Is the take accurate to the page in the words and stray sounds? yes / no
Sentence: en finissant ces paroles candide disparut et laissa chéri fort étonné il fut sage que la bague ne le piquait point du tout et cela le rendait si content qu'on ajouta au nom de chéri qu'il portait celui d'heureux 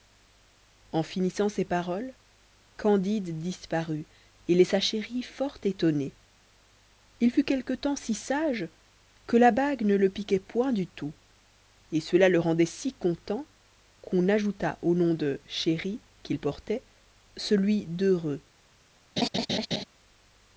no